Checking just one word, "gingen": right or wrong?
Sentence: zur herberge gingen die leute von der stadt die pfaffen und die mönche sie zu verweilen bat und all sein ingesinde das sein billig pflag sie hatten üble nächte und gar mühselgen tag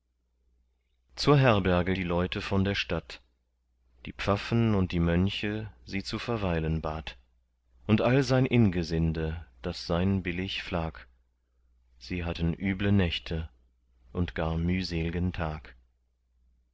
wrong